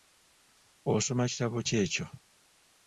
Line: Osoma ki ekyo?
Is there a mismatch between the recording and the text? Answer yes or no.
yes